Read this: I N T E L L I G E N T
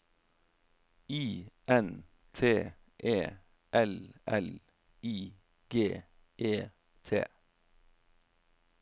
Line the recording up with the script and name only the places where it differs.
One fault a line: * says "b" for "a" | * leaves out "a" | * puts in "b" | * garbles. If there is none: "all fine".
* leaves out "N"